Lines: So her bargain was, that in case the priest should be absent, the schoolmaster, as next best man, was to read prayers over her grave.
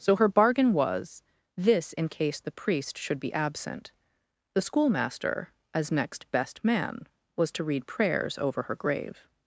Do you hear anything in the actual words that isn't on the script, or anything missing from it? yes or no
yes